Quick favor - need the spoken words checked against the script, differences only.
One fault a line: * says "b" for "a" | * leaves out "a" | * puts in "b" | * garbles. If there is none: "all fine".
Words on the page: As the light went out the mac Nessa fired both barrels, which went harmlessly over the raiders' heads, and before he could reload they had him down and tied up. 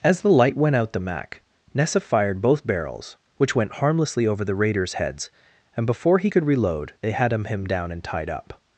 * puts in "him"